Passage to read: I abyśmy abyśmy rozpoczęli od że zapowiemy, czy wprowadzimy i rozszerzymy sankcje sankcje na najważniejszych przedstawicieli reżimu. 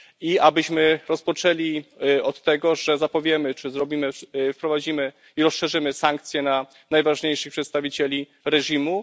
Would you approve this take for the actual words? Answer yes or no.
no